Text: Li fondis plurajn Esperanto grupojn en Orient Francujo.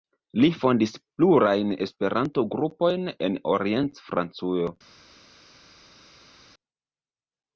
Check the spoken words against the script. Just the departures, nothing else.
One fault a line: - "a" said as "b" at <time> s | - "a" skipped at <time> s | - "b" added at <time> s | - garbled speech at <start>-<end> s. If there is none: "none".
none